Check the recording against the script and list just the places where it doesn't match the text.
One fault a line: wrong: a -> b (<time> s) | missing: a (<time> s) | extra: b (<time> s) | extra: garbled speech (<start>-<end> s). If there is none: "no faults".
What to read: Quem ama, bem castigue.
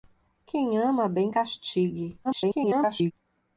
extra: garbled speech (2.2-3.1 s)